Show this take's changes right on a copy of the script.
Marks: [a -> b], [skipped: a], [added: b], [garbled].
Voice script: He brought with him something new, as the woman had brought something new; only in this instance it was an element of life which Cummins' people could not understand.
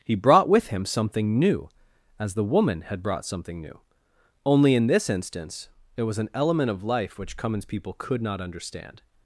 He brought with him something new, as the woman had brought something new; only in this instance it was an element of life which Cummins' people could not understand.